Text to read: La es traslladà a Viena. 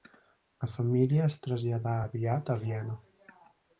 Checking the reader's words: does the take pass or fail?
fail